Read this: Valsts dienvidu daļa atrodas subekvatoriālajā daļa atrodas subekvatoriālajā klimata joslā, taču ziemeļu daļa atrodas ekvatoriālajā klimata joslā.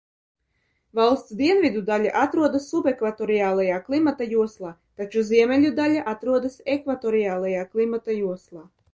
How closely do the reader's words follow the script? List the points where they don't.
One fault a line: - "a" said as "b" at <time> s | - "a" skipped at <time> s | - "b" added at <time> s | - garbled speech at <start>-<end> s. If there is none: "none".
- "daļa atrodas subekvatoriālajā" skipped at 3.8 s